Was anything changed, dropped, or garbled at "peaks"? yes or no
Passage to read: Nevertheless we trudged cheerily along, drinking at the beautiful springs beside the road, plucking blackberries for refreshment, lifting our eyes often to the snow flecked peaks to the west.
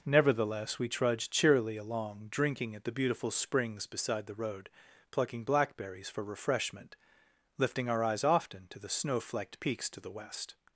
no